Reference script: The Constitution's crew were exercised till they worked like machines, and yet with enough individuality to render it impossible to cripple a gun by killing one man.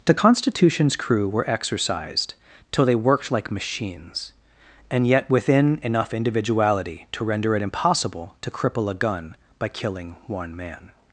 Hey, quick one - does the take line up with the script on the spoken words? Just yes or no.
no